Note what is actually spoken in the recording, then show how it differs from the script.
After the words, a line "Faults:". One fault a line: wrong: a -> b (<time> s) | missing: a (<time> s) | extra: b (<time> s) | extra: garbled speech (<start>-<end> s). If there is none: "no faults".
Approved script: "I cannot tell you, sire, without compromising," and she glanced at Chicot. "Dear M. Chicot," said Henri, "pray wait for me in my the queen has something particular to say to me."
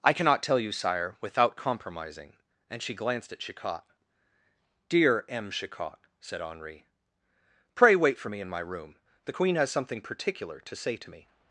"I cannot tell you, sire, without compromising," and she glanced at Chicot. "Dear M. Chicot," said Henri, "pray wait for me in my room, the queen has something particular to say to me."
Faults:
extra: room (8.6 s)